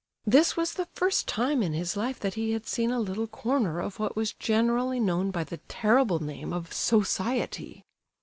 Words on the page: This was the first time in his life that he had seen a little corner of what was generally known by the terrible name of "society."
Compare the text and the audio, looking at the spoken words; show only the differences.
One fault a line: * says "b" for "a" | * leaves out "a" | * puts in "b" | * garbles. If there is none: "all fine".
all fine